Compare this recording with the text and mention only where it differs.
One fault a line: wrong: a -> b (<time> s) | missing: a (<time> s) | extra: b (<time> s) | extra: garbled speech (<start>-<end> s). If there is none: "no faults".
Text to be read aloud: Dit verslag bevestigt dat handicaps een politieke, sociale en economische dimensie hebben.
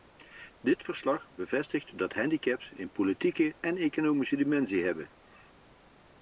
missing: sociale (3.5 s)